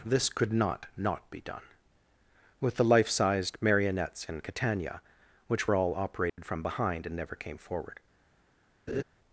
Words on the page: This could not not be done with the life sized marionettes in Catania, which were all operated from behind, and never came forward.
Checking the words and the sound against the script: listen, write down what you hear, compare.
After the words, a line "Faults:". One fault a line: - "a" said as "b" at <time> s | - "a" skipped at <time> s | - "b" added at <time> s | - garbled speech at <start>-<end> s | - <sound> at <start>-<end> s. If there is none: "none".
This could not not be done with the life sized marionettes in Catania, which were all operated from behind, and never came forward.
Faults:
- dropout at 6.3-6.4 s
- laugh at 8.9-9.0 s